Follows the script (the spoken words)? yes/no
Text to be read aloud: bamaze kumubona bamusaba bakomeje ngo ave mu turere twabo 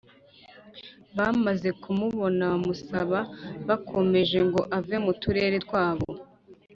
yes